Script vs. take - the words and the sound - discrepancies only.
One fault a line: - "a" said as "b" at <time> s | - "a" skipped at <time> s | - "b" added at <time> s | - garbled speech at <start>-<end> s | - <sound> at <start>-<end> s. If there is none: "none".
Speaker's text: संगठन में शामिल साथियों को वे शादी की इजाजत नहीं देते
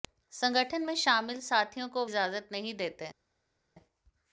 - "वे शादी की" skipped at 2.0 s